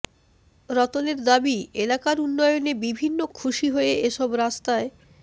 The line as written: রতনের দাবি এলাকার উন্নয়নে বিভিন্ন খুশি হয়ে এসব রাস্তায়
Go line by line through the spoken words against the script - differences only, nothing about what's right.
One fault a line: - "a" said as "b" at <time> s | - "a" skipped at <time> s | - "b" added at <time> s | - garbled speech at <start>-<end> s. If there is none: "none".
none